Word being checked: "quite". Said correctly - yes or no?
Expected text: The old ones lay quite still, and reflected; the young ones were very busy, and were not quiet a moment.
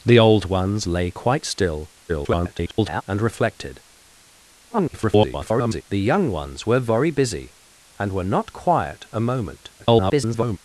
yes